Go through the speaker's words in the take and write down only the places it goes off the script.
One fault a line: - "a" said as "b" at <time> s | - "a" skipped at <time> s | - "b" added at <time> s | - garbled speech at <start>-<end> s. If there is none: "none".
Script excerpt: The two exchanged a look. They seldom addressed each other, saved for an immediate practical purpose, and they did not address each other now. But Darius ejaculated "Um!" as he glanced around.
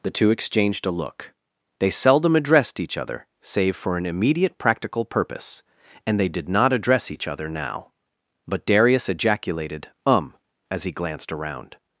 - "saved" said as "save" at 3.4 s